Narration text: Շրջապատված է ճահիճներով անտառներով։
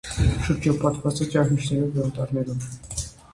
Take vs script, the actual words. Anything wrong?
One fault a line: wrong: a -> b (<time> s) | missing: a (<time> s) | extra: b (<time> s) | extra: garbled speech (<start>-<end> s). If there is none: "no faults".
no faults